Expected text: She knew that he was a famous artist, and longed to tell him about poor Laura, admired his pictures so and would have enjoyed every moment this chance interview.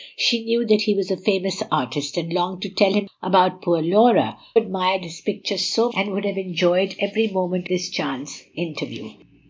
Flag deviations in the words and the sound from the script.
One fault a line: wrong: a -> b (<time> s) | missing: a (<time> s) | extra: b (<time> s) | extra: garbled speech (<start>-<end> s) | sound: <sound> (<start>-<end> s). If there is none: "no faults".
no faults